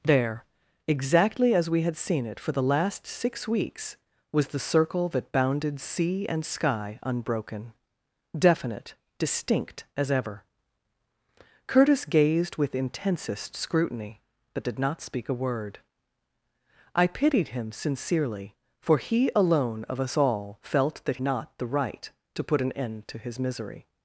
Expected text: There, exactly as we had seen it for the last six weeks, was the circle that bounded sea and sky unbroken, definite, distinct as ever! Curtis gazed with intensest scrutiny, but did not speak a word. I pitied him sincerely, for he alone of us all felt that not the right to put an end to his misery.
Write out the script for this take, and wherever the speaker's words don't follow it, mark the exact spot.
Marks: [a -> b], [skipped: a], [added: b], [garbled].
There, exactly as we had seen it for the last six weeks, was the circle that bounded sea and sky unbroken, definite, distinct as ever! Curtis gazed with intensest scrutiny, but did not speak a word. I pitied him sincerely, for he alone of us all felt that not the right to put an end to his misery.